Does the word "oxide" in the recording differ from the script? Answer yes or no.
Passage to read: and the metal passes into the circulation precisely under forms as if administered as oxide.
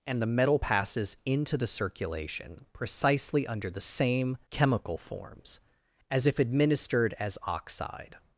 no